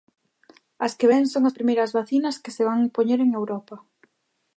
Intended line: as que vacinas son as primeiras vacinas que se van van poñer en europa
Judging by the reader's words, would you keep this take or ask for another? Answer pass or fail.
fail